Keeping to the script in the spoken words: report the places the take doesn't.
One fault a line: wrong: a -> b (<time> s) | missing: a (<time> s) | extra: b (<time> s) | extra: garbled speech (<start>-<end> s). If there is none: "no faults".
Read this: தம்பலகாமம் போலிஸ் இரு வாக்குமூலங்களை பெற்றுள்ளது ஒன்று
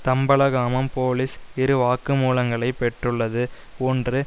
no faults